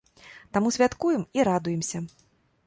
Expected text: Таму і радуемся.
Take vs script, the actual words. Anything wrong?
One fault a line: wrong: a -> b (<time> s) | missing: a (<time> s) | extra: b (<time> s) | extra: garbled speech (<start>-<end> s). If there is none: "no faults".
extra: святкуем (0.7 s)